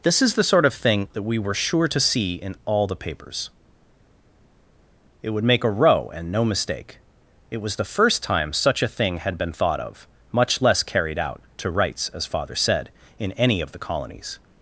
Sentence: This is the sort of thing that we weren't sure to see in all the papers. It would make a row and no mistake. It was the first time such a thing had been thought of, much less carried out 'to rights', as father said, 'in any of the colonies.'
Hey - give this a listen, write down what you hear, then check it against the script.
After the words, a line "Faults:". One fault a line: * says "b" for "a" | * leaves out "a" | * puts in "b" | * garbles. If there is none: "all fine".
This is the sort of thing that we were sure to see in all the papers. It would make a row and no mistake. It was the first time such a thing had been thought of, much less carried out 'to rights', as father said, 'in any of the colonies.'
Faults:
* says "were" for "weren't"